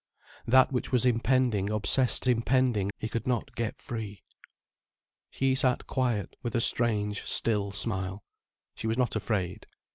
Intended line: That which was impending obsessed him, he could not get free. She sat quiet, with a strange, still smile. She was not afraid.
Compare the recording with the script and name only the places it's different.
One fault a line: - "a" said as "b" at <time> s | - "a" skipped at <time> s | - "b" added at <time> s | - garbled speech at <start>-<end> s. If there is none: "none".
- "him" said as "impending" at 2.3 s